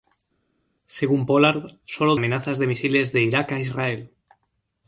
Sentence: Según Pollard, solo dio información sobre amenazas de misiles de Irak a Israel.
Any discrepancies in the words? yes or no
yes